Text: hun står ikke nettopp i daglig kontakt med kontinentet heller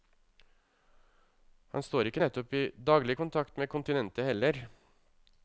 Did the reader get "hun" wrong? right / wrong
wrong